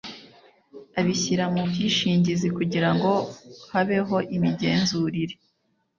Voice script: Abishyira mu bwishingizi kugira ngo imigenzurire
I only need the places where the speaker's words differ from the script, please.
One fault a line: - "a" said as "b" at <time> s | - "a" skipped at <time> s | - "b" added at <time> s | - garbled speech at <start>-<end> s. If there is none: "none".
- "habeho" added at 3.7 s